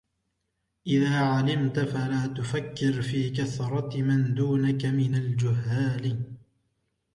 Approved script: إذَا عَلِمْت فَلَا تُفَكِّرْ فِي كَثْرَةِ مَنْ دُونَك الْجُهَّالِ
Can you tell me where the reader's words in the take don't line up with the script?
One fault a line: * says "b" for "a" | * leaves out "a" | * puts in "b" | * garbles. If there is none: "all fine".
* puts in "مِنْ"